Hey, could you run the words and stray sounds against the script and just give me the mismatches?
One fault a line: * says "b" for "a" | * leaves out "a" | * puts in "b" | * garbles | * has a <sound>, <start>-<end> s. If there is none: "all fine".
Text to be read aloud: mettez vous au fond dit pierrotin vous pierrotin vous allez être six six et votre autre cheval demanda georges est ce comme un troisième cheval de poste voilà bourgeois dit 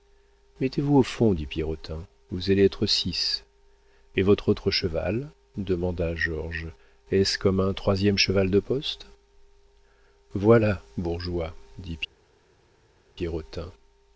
* leaves out "pierrotin vous"
* leaves out "six"